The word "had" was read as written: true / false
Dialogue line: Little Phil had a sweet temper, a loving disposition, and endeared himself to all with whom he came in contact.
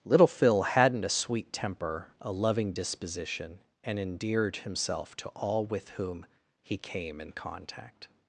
false